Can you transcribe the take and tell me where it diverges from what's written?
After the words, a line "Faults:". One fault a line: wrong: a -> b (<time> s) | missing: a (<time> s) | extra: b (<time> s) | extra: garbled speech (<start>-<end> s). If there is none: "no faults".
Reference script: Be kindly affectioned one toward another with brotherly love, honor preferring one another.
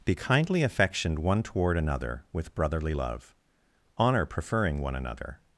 Be kindly affectioned one toward another with brotherly love, honor preferring one another.
Faults:
no faults